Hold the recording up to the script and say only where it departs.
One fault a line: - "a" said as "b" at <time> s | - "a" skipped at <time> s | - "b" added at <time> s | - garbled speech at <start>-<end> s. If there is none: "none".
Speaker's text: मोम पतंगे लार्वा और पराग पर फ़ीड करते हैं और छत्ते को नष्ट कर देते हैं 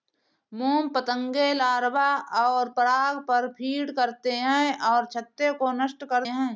- "देते" skipped at 6.2 s